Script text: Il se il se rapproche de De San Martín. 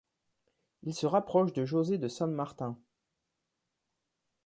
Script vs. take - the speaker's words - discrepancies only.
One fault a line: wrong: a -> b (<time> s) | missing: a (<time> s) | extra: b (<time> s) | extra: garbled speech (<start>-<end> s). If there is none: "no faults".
missing: il se (1.1 s)
extra: José (1.6 s)